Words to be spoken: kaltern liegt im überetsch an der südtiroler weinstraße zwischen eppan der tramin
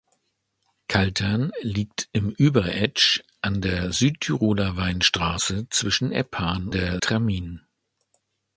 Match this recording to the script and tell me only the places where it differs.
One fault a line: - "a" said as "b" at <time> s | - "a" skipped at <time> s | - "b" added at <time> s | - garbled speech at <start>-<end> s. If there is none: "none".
none